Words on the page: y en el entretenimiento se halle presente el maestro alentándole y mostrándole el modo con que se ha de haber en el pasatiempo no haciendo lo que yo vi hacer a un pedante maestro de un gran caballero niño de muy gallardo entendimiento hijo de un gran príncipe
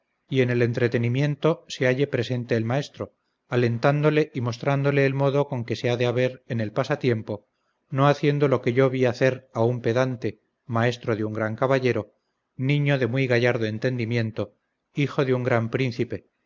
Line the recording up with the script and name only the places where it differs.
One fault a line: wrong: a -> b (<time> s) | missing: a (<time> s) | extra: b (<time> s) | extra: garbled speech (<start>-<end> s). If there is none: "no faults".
no faults